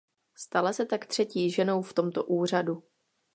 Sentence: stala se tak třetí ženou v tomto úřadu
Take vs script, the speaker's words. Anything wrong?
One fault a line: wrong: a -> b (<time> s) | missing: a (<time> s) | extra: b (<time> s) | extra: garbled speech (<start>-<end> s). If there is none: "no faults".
no faults